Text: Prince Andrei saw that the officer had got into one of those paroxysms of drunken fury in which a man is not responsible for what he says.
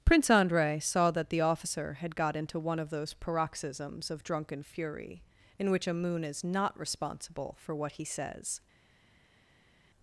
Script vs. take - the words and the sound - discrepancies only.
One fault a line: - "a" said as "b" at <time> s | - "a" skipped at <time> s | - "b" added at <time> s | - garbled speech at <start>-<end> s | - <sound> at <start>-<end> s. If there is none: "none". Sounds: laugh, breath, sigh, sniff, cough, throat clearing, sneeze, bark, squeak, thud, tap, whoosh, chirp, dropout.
- "man" said as "moon" at 5.9 s